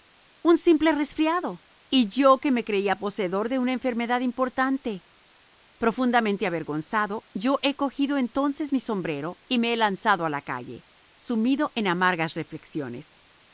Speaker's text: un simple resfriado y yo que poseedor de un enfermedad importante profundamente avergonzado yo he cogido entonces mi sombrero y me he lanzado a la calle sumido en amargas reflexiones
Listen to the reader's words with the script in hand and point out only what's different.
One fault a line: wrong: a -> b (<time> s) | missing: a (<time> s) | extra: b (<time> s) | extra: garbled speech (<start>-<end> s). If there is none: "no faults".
extra: me creía (2.5 s)
wrong: un -> una (3.6 s)